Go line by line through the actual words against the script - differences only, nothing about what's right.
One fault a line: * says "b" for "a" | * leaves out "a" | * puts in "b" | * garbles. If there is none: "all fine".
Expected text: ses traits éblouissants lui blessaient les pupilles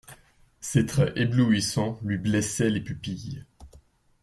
all fine